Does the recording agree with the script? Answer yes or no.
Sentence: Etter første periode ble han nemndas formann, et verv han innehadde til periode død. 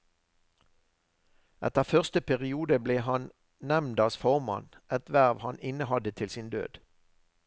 no